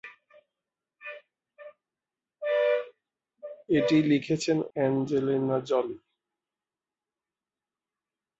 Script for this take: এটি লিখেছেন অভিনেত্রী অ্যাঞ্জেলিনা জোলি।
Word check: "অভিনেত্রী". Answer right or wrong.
wrong